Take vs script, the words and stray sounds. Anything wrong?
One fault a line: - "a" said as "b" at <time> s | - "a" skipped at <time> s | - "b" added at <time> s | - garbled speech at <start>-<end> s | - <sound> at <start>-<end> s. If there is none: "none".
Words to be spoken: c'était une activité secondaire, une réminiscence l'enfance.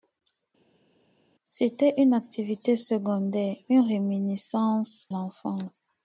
none